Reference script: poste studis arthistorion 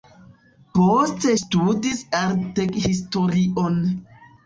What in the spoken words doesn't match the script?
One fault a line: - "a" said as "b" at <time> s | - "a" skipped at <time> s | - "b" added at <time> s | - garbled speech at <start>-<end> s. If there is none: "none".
none